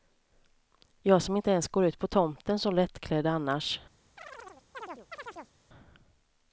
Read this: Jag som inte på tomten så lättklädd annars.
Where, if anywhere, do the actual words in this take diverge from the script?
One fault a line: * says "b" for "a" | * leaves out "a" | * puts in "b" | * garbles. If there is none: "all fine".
* puts in "ens går ut"